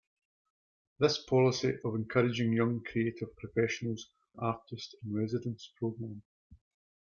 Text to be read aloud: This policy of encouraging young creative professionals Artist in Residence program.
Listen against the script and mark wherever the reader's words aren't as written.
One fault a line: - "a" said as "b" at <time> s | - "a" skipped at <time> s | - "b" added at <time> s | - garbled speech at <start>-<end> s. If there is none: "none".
none